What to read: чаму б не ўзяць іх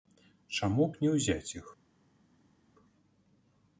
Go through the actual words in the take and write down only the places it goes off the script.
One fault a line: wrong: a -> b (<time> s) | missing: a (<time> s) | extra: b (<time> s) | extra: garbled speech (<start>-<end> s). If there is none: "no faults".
no faults